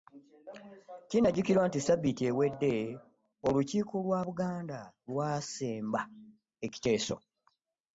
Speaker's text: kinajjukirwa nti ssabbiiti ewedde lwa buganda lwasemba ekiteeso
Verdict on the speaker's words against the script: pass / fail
fail